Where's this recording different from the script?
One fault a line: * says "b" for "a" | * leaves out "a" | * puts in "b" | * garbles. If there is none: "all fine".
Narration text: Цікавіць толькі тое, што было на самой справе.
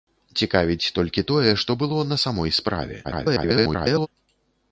* garbles